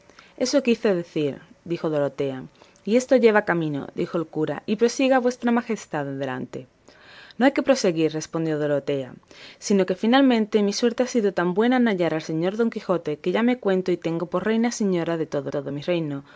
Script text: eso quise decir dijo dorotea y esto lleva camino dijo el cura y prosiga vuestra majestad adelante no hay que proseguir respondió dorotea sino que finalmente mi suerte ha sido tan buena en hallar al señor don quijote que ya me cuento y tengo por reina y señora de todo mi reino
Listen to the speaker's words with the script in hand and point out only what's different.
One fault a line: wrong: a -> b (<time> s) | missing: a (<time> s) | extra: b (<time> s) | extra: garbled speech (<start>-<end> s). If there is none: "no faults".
extra: todo (15.5 s)